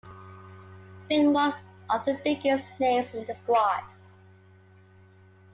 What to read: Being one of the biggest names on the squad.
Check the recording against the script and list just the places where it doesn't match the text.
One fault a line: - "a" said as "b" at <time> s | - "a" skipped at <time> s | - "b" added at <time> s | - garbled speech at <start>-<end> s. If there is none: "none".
- "on" said as "in" at 3.1 s